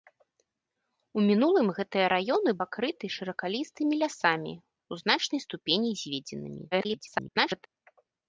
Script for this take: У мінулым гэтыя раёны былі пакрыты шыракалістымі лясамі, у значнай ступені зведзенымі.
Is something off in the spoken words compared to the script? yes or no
yes